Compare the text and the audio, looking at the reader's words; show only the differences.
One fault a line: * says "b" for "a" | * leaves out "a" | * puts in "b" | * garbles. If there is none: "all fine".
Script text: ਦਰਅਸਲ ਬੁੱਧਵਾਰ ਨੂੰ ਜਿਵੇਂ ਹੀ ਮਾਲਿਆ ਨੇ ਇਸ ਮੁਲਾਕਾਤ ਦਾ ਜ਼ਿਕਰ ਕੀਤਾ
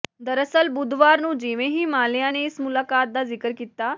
all fine